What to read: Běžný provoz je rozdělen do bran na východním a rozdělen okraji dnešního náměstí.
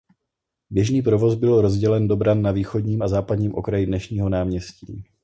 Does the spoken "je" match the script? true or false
false